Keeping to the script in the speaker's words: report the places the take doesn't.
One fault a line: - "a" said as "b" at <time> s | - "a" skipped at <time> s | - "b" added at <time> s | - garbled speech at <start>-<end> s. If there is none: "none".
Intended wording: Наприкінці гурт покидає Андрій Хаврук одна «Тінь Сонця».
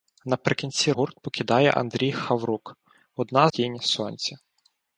none